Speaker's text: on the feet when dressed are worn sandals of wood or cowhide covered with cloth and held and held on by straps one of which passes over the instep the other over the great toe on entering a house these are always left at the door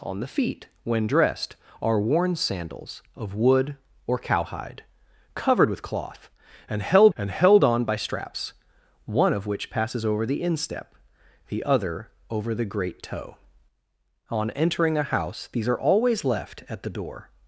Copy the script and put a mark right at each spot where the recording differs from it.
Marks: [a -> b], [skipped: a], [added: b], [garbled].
on the feet when dressed are worn sandals of wood or cowhide covered with cloth and held and held on by straps one of which passes over the instep the other over the great toe on entering a house these are always left at the door